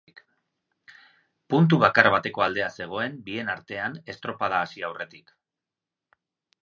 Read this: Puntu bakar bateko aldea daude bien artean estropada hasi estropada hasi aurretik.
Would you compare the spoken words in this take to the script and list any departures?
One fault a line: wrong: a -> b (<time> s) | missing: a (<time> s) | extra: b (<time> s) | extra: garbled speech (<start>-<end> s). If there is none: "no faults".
wrong: daude -> zegoen (2.8 s)
missing: estropada hasi (4.9 s)